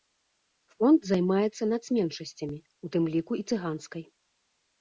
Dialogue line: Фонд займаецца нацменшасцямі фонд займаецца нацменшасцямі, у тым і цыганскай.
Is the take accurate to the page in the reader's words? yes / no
no